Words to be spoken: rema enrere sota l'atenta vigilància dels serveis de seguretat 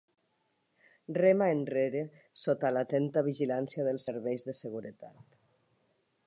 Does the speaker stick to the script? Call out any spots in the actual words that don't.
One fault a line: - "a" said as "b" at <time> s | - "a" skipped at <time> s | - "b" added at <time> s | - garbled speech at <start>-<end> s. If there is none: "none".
none